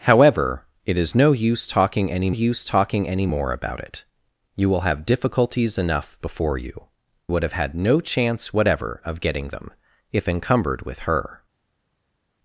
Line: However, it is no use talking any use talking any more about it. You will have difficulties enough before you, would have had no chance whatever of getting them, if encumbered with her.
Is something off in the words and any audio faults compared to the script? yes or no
no